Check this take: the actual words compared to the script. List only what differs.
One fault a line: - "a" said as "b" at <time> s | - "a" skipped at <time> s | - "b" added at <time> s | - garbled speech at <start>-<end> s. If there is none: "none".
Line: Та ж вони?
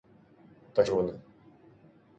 none